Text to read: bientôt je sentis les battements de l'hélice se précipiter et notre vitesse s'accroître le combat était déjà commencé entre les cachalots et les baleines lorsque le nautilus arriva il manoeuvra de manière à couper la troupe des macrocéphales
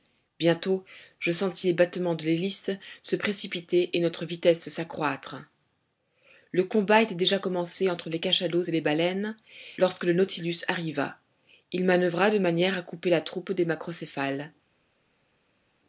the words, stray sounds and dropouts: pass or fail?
pass